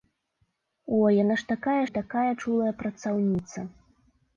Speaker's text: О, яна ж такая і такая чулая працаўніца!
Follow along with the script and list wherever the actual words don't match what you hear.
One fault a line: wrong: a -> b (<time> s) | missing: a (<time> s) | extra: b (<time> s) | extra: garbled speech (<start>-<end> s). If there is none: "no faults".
no faults